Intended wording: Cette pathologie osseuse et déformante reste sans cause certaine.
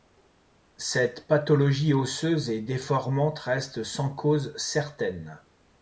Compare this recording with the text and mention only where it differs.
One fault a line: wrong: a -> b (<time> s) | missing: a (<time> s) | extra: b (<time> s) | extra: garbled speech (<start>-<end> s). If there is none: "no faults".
no faults